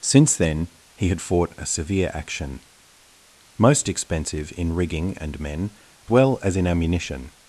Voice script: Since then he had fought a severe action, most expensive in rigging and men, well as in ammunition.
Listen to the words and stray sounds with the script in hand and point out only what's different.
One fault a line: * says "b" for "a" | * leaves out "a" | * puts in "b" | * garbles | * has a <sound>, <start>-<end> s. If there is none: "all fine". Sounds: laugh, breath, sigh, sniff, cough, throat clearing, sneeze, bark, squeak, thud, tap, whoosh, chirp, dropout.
all fine